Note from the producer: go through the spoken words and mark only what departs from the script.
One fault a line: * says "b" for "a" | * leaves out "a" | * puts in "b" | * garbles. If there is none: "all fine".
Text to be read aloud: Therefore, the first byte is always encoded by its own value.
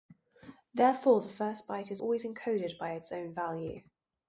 all fine